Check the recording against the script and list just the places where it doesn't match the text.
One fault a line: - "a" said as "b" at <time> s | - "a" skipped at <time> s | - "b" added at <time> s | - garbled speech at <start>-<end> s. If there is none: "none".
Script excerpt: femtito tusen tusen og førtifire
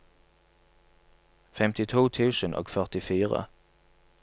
- "tusen" skipped at 2.5 s